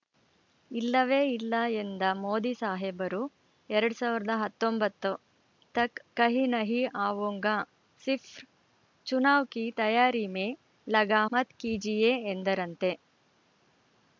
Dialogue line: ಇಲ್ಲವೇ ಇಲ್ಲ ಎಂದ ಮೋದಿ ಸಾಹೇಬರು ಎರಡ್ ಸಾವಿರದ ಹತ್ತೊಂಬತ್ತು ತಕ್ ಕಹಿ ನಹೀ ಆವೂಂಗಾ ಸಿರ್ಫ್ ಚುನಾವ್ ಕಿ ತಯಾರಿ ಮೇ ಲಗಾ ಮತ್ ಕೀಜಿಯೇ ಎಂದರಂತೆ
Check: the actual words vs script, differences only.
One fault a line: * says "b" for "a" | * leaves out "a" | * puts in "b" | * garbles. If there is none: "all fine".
all fine